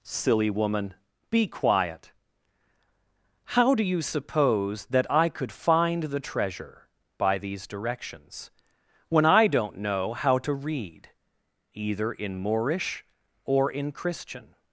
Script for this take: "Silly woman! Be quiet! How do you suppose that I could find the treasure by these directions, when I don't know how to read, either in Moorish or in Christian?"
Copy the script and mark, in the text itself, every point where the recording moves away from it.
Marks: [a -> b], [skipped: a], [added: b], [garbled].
"Silly woman! Be quiet! How do you suppose that I could find the treasure by these directions, when I don't know how to read, either in Moorish or in Christian?"